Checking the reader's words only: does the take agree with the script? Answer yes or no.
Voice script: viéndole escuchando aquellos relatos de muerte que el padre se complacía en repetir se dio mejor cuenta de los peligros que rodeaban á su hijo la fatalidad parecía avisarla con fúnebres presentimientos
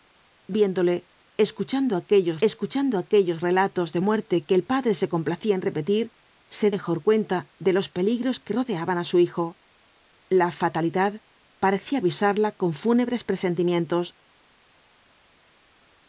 no